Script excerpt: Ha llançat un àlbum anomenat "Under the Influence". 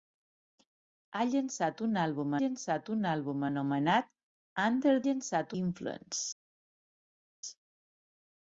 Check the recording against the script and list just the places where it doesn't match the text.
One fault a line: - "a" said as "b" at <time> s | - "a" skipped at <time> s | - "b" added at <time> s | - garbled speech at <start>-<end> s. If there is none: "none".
- "llançat un àlbum" added at 2.4 s
- "the" said as "llançat" at 5.1 s